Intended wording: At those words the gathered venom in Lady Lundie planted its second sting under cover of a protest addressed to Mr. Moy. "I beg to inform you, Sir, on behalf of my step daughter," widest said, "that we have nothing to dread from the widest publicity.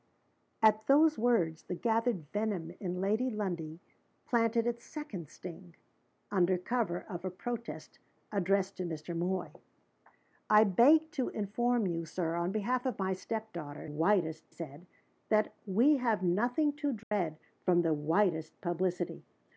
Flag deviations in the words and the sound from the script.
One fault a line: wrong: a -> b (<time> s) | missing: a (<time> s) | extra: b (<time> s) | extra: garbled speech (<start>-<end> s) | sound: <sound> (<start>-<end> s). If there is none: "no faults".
sound: dropout (17.0-17.1 s)